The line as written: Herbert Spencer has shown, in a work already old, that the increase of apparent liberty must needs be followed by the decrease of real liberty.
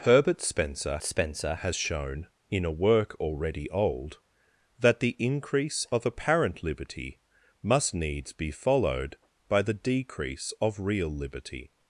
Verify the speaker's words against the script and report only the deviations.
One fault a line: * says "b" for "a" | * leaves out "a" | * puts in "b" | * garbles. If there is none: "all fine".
* puts in "Spencer"